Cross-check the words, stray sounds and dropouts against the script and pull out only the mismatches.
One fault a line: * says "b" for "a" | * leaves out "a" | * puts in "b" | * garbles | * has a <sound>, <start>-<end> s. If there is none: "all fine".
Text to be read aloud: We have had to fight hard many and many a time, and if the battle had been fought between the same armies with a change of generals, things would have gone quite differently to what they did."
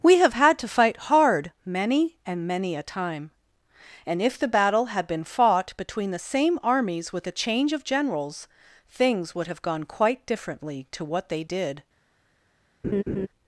* has a laugh, 12.8-13.3 s